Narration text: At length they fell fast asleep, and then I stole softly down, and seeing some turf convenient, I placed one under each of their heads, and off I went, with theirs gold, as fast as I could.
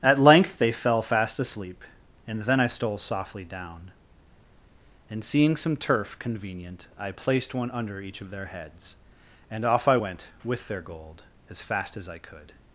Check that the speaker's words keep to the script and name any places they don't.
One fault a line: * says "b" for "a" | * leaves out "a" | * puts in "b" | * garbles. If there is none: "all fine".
* says "their" for "theirs"